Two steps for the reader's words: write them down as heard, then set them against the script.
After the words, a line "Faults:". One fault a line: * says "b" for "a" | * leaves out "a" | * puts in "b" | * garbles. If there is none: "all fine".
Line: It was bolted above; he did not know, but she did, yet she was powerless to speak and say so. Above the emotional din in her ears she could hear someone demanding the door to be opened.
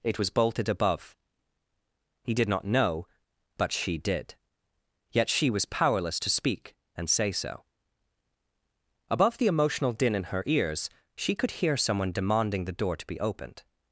It was bolted above; he did not know, but she did, yet she was powerless to speak and say so. Above the emotional din in her ears she could hear someone demanding the door to be opened.
Faults:
all fine